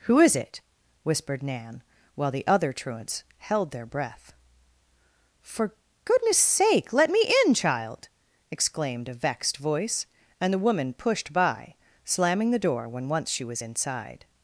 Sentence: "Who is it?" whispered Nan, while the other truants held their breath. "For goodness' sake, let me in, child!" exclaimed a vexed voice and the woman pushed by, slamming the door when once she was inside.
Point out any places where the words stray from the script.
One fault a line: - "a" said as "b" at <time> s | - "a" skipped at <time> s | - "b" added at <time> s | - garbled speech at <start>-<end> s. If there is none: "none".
none